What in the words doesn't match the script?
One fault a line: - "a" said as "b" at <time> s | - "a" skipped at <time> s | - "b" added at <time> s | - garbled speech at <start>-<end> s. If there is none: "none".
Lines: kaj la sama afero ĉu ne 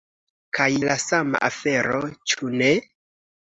none